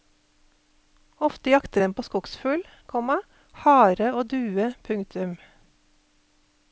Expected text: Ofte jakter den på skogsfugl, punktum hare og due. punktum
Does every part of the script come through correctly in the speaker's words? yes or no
no